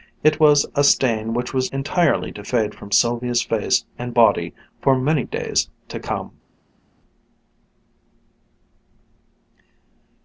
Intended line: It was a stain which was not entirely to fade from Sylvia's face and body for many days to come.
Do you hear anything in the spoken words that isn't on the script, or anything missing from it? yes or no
yes